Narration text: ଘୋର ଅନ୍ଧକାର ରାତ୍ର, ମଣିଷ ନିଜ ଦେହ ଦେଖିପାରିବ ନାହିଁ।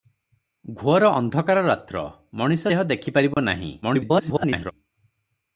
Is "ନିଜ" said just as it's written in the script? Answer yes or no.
no